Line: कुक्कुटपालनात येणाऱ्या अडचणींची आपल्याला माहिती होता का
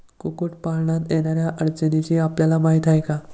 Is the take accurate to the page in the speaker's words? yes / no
no